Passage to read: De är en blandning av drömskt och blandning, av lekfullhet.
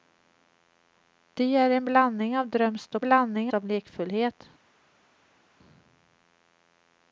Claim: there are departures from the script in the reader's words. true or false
false